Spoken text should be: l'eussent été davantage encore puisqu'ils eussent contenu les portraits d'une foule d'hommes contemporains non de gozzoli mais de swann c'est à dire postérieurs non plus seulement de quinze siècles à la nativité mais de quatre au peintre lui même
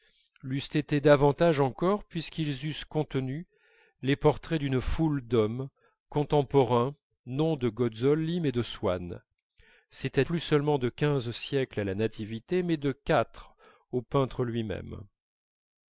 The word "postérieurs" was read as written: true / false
false